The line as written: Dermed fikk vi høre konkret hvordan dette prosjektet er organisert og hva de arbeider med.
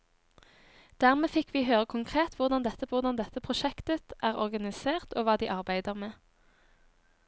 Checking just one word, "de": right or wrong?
right